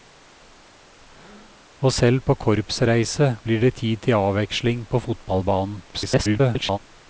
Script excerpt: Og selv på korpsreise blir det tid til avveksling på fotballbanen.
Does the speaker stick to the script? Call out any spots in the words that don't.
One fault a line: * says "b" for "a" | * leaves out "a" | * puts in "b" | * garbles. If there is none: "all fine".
* garbles